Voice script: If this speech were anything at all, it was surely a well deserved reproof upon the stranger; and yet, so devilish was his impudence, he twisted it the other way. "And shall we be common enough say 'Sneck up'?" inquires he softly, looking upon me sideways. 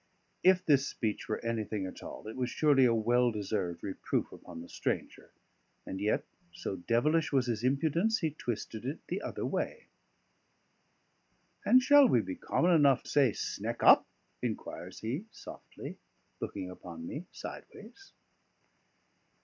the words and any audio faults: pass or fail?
pass